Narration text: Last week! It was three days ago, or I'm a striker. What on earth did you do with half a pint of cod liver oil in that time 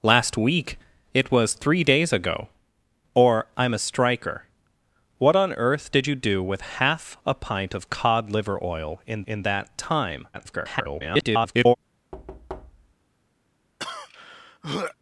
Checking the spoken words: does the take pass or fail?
fail